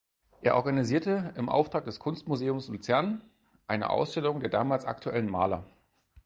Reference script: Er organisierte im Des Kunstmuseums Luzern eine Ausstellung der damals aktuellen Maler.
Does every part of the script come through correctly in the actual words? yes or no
no